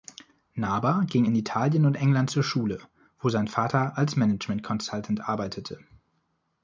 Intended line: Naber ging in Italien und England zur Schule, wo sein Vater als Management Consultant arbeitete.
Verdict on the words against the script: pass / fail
pass